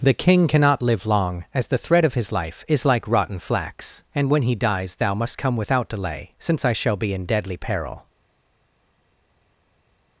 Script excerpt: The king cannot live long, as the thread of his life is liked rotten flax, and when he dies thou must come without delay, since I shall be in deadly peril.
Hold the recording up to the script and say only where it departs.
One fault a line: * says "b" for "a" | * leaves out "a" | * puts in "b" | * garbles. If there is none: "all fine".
* says "like" for "liked"